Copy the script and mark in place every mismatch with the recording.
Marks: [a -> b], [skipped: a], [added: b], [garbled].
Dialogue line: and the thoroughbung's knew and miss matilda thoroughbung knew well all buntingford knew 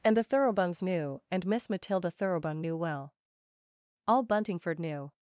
and the thoroughbung's knew and miss matilda thoroughbung knew well all buntingford knew